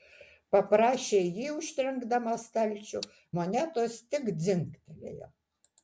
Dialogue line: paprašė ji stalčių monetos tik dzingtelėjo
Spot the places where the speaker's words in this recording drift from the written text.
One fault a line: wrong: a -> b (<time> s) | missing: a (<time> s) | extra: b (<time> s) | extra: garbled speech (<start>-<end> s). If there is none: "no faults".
extra: užtrenkdama (1.6 s)